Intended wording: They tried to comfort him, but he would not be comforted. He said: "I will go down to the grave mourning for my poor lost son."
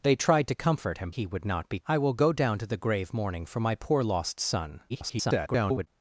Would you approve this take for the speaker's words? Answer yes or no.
no